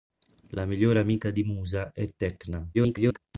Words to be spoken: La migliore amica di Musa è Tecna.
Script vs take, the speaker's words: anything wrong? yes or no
yes